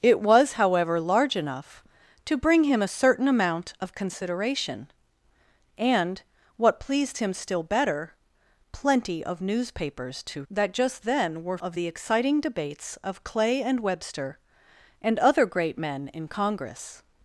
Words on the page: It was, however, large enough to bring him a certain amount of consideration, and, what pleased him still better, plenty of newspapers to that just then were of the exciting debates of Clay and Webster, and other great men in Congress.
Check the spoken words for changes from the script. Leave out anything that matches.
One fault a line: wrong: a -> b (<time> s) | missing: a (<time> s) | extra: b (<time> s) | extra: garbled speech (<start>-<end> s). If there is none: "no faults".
no faults